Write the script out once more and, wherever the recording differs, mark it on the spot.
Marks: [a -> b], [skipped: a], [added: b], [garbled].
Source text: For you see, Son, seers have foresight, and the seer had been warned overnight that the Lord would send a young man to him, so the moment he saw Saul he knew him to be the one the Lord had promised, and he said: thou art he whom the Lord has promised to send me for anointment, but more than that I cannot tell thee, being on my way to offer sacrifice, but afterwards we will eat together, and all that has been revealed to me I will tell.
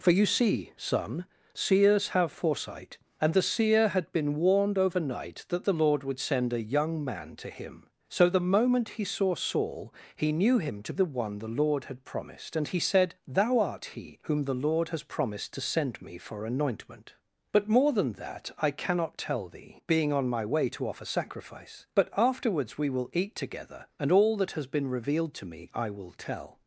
For you see, Son, seers have foresight, and the seer had been warned overnight that the Lord would send a young man to him, so the moment he saw Saul he knew him to [skipped: be] the one the Lord had promised, and he said: thou art he whom the Lord has promised to send me for anointment, but more than that I cannot tell thee, being on my way to offer sacrifice, but afterwards we will eat together, and all that has been revealed to me I will tell.